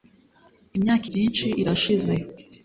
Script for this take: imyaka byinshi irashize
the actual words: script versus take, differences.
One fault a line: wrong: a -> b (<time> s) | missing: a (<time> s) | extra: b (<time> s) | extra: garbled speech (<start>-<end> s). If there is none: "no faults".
no faults